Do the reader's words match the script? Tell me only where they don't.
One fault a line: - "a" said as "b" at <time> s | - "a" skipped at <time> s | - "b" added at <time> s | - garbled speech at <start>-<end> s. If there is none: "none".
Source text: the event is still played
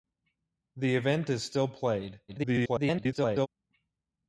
- garbled speech at 2.3-3.5 s